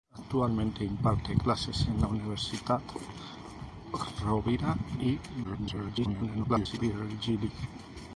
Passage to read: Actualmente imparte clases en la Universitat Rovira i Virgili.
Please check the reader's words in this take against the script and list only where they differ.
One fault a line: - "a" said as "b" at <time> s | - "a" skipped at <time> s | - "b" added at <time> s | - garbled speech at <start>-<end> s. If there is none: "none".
- garbled speech at 5.4-6.8 s